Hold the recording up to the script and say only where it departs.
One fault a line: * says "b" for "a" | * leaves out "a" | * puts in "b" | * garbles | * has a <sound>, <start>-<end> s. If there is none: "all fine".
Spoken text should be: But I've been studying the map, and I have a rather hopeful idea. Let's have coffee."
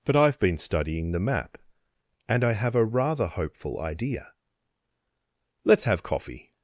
all fine